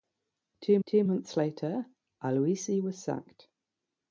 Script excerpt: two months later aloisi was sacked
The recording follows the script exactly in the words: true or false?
false